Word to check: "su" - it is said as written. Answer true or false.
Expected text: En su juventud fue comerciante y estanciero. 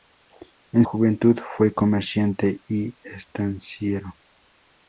false